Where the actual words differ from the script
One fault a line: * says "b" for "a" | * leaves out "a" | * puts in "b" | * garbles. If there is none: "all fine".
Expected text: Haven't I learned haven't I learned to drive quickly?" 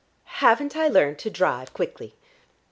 * leaves out "haven't I learned"